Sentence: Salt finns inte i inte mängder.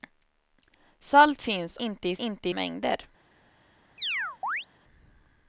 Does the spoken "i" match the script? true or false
true